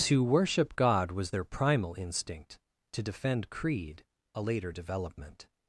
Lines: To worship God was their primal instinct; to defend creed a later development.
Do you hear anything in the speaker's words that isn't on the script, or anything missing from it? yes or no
no